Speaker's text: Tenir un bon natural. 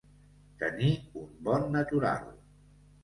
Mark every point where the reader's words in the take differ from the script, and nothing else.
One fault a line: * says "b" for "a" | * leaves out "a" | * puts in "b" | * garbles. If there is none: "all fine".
all fine